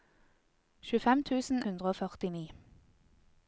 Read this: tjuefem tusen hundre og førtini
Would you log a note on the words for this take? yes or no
no